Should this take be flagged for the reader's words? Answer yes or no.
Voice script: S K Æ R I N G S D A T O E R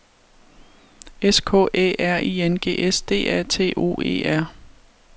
no